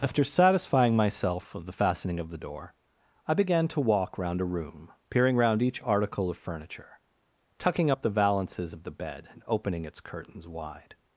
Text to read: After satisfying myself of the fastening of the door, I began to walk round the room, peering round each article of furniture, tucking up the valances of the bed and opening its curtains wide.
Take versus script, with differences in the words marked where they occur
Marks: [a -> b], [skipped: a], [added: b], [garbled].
After satisfying myself of the fastening of the door, I began to walk round [the -> a] room, peering round each article of furniture, tucking up the valances of the bed and opening its curtains wide.